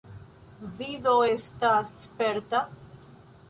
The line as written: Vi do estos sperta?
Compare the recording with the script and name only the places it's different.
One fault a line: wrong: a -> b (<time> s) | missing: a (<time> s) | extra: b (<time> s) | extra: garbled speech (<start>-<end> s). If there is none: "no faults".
wrong: estos -> estas (1.3 s)